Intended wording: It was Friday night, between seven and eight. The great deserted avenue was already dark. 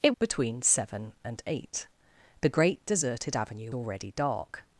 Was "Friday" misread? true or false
true